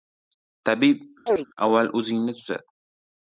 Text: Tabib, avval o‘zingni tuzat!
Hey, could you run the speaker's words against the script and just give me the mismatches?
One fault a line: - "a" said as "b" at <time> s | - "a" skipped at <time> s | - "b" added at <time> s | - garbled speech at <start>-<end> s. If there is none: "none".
none